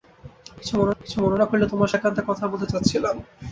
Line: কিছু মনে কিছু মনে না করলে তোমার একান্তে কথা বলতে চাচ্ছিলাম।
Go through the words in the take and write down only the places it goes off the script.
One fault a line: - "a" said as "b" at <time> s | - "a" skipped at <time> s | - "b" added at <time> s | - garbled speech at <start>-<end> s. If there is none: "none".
none